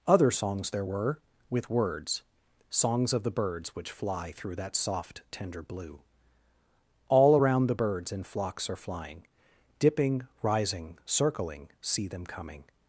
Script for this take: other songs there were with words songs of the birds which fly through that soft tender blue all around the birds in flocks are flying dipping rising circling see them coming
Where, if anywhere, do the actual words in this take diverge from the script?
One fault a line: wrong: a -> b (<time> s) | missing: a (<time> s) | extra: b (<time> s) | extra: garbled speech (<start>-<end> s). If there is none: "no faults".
no faults